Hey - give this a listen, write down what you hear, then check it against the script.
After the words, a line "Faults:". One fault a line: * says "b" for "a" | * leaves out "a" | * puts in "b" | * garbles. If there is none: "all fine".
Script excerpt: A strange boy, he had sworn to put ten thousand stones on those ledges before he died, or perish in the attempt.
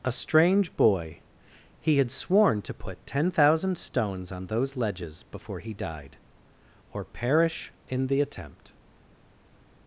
A strange boy, he had sworn to put ten thousand stones on those ledges before he died, or perish in the attempt.
Faults:
all fine